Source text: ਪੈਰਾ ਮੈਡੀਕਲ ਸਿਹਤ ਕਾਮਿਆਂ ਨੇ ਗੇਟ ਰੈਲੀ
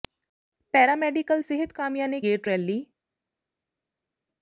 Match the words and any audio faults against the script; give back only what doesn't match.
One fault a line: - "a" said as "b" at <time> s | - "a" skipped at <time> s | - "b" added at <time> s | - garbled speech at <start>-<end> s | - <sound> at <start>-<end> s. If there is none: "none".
none